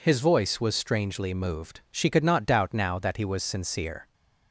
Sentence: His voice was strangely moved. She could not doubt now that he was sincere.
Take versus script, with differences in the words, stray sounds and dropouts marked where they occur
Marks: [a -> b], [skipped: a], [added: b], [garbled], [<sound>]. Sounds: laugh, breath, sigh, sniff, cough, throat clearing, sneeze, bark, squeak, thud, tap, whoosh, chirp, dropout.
His voice was strangely moved. She could not doubt now that he was sincere.